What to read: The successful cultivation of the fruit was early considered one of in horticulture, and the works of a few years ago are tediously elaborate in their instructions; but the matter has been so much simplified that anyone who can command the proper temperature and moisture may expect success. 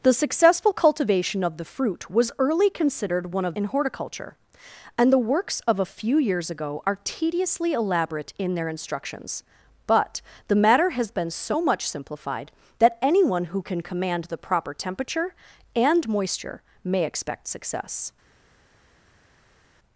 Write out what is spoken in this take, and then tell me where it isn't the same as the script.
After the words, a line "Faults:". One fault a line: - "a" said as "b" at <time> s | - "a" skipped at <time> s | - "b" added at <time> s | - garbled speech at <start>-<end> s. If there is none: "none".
The successful cultivation of the fruit was early considered one of in horticulture, and the works of a few years ago are tediously elaborate in their instructions; but the matter has been so much simplified that anyone who can command the proper temperature and moisture may expect success.
Faults:
none